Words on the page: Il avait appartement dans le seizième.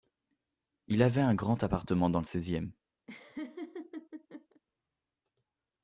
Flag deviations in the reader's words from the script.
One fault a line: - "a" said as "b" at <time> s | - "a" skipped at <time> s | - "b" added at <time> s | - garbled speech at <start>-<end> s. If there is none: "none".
- "un grand" added at 1.2 s